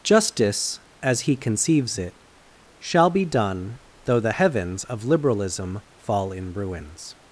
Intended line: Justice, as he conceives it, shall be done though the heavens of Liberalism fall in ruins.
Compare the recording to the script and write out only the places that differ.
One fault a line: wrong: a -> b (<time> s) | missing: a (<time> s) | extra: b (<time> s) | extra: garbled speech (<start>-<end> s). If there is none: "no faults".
no faults